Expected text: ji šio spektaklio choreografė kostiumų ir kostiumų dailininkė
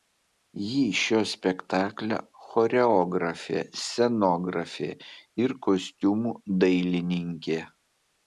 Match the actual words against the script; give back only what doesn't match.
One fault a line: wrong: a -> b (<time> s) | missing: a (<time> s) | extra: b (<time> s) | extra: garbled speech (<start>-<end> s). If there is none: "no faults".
wrong: kostiumų -> scenografė (3.8 s)